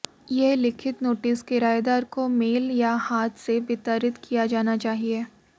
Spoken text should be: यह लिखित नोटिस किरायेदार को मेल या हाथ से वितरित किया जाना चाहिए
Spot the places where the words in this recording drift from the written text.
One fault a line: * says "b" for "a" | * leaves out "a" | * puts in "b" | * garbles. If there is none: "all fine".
all fine